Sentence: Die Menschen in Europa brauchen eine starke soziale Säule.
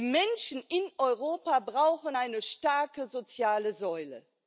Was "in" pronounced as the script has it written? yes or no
yes